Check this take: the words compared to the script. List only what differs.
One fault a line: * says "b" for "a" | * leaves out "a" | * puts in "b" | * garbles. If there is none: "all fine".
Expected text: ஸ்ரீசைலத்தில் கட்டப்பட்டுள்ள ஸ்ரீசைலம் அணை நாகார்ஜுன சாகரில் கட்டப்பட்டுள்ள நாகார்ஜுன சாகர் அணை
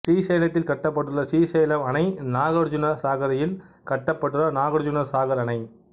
all fine